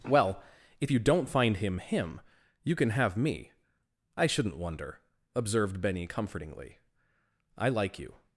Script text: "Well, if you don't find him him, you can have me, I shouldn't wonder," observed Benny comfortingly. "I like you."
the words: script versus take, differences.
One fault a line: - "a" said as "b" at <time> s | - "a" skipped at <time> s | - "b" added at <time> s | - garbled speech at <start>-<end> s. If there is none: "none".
none